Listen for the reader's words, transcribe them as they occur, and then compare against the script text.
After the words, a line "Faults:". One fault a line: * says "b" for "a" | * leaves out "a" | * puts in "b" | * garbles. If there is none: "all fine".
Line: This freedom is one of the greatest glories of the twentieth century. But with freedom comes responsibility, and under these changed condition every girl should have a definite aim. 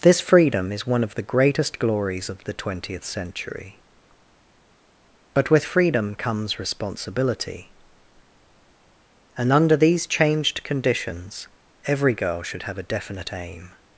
This freedom is one of the greatest glories of the twentieth century. But with freedom comes responsibility, and under these changed conditions every girl should have a definite aim.
Faults:
* says "conditions" for "condition"